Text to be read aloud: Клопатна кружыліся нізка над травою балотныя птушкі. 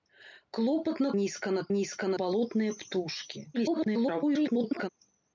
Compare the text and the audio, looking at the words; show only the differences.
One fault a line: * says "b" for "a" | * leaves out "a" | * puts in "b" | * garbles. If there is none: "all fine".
* leaves out "кружыліся"
* says "нізка" for "травою"
* garbles